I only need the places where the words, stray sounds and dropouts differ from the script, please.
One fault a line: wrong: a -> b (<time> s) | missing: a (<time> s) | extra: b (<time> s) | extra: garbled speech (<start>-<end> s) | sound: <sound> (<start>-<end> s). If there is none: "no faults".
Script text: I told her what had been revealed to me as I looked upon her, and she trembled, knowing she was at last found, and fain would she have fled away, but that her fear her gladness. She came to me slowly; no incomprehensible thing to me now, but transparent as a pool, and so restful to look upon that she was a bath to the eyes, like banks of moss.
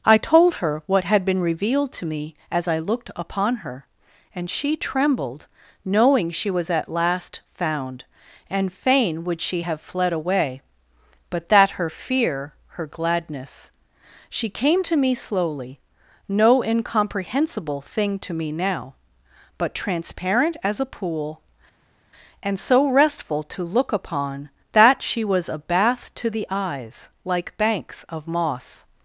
no faults